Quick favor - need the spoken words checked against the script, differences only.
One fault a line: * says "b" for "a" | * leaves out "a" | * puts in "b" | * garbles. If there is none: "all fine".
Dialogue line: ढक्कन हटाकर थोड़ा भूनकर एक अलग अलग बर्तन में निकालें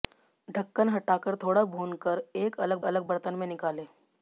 all fine